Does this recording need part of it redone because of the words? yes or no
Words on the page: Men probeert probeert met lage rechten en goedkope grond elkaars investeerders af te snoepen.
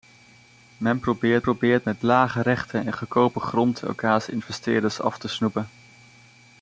no